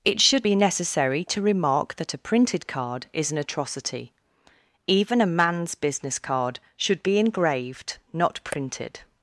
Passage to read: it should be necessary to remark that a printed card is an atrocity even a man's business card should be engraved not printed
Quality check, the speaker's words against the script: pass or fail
pass